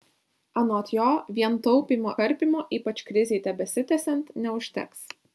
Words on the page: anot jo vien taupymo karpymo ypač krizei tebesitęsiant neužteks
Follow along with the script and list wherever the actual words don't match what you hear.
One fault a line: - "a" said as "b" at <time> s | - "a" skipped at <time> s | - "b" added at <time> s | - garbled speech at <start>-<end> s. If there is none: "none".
none